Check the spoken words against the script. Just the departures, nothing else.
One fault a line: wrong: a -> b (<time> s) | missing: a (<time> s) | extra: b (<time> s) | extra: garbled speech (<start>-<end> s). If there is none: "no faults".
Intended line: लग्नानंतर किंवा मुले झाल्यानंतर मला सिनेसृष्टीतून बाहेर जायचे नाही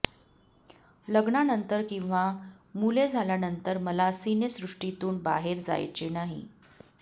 no faults